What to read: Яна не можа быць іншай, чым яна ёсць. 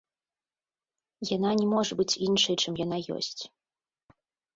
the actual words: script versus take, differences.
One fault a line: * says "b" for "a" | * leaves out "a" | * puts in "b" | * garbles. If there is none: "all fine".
all fine